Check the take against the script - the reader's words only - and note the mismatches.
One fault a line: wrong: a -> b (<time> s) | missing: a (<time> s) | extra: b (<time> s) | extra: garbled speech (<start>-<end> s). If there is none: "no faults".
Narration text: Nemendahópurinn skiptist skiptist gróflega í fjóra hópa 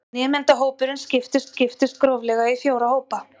no faults